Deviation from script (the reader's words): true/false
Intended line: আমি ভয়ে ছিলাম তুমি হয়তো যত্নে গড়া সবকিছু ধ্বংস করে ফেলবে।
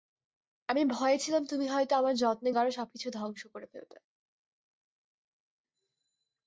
true